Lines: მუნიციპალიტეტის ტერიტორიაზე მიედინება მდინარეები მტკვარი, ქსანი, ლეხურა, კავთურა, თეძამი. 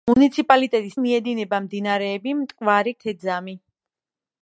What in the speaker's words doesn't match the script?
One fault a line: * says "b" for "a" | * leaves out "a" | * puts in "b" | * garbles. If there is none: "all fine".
* leaves out "ტერიტორიაზე"
* leaves out "ქსანი ლეხურა კავთურა"